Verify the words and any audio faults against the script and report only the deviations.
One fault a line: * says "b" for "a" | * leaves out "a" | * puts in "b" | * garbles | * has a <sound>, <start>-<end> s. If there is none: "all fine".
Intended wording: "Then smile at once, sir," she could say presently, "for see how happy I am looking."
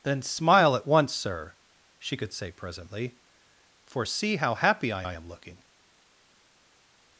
* puts in "I"